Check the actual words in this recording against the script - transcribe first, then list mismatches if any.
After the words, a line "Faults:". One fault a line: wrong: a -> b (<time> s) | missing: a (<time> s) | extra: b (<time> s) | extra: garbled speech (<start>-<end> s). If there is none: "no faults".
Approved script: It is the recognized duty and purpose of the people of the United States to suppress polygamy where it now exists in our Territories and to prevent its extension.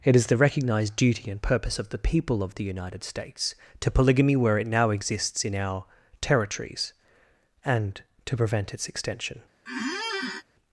It is the recognized duty and purpose of the people of the United States to polygamy where it now exists in our Territories and to prevent its extension.
Faults:
missing: suppress (3.9 s)